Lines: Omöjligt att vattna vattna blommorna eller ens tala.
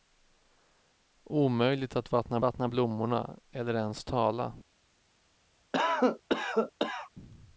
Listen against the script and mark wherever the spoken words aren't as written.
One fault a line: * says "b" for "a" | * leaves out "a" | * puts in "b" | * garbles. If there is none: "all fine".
all fine